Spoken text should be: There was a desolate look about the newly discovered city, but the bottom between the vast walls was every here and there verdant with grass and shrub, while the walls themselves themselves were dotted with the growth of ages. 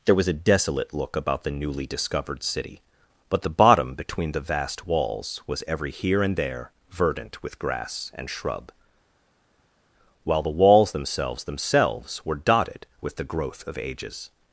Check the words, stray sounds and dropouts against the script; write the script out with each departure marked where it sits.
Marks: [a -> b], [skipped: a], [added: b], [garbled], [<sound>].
There was a desolate look about the newly discovered city, but the bottom between the vast walls was every here and there verdant with grass and shrub, while the walls themselves themselves were dotted with the growth of ages.